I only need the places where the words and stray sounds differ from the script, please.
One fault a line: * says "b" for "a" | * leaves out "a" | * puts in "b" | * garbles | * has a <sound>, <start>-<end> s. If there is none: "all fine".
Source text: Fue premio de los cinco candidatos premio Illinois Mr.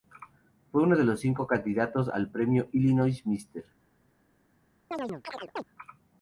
* says "uno" for "premio"
* puts in "al"
* has a chirp, 4.9-5.6 s